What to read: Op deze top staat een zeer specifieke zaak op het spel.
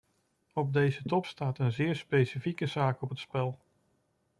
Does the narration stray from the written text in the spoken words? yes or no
no